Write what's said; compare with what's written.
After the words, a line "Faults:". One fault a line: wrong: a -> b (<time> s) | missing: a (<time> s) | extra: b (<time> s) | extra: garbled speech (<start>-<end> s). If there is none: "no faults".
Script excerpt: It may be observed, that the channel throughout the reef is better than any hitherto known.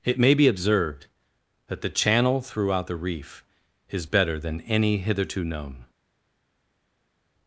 It may be observed, that the channel throughout the reef is better than any hitherto known.
Faults:
no faults